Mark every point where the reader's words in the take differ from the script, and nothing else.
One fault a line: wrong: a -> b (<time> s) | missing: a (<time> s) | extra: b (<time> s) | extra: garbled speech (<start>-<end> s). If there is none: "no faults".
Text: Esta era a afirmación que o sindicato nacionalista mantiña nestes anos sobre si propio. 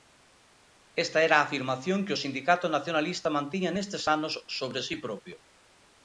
no faults